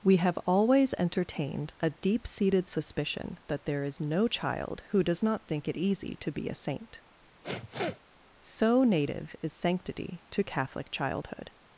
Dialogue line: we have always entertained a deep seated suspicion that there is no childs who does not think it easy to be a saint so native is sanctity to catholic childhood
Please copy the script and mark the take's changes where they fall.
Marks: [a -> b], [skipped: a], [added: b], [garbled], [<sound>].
we have always entertained a deep seated suspicion that there is no [childs -> child] who does not think it easy to be a saint [sniff] so native is sanctity to catholic childhood